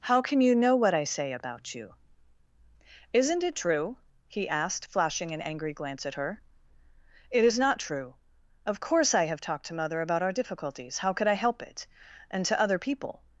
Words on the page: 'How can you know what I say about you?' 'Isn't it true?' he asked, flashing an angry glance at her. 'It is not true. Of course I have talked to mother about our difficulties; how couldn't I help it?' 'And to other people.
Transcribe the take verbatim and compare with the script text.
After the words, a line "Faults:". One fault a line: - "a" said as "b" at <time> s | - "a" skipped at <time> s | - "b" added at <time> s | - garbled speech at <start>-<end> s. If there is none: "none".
'How can you know what I say about you?' 'Isn't it true?' he asked, flashing an angry glance at her. 'It is not true. Of course I have talked to mother about our difficulties; how could I help it?' 'And to other people.
Faults:
- "couldn't" said as "could" at 11.1 s